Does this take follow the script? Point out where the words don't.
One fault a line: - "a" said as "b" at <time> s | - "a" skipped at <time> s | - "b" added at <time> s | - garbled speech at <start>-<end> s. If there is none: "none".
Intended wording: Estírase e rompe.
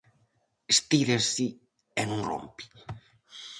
- "non" added at 2.1 s